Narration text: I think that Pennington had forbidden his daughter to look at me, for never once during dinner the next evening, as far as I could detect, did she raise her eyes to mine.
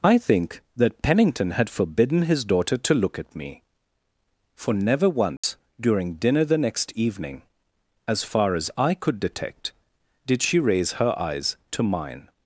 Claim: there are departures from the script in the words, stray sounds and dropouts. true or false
true